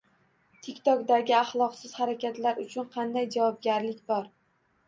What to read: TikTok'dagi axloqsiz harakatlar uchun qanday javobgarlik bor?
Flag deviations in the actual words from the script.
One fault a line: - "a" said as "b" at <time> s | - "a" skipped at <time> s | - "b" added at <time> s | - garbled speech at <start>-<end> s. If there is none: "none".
none